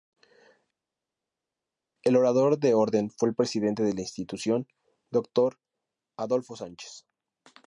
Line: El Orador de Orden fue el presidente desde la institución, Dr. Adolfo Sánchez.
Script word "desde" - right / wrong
wrong